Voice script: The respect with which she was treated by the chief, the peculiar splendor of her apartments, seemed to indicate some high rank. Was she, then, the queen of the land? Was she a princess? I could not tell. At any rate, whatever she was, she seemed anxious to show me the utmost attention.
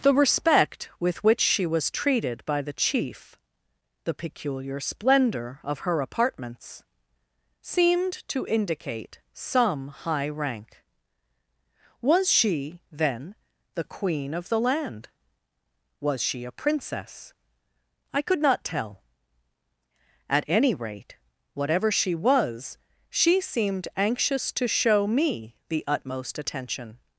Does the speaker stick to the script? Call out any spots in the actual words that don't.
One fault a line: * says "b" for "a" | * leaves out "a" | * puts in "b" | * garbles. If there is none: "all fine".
all fine